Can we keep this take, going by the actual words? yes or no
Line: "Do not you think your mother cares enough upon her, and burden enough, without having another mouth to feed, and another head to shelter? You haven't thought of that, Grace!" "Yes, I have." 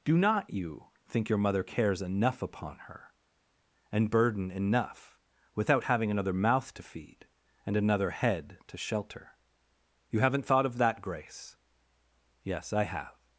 yes